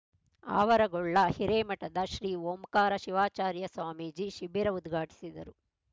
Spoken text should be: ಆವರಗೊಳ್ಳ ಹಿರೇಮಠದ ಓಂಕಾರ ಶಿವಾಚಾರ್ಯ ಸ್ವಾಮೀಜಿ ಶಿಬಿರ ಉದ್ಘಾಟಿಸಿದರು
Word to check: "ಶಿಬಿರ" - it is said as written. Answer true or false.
true